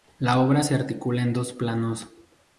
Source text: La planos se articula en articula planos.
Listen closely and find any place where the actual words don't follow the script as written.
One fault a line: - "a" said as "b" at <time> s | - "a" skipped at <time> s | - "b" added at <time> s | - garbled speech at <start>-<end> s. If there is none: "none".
- "planos" said as "obra" at 0.4 s
- "articula" said as "dos" at 1.3 s